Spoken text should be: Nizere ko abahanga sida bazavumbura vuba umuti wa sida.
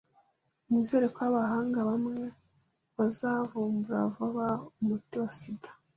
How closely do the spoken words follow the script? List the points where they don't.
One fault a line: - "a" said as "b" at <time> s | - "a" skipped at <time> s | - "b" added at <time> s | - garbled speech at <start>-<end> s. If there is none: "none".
- "sida" said as "bamwe" at 1.9 s